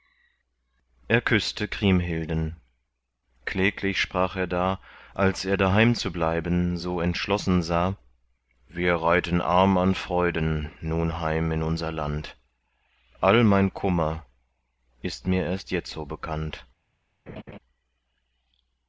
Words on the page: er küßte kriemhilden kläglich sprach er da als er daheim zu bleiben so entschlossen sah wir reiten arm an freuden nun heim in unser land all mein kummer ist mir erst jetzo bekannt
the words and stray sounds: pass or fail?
fail